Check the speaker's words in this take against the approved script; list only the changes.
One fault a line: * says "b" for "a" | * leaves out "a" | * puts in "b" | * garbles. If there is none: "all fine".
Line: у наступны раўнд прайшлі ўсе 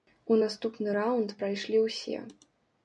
all fine